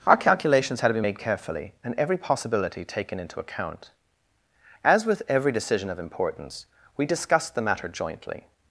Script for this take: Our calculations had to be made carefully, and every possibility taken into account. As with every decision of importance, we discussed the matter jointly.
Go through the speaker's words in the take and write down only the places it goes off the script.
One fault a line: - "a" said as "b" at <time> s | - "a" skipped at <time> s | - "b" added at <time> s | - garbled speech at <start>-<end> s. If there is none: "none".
none